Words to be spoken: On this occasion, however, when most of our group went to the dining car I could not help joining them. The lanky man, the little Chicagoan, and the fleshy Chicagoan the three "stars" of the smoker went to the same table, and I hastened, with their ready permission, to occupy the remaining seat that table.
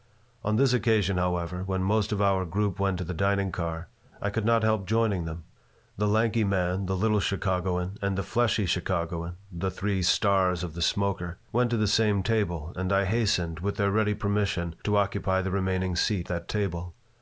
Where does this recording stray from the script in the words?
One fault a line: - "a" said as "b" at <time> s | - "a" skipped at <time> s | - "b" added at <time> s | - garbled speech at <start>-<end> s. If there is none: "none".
none